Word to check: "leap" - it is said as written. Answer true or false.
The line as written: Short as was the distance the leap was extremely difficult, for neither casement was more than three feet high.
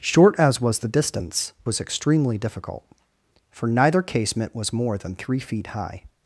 false